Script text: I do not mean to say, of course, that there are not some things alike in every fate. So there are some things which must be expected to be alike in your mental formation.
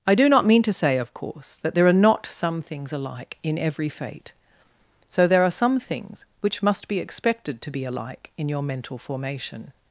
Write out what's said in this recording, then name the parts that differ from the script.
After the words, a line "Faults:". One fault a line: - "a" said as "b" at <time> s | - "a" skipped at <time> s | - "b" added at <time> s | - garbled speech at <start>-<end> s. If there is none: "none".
I do not mean to say, of course, that there are not some things alike in every fate. So there are some things which must be expected to be alike in your mental formation.
Faults:
none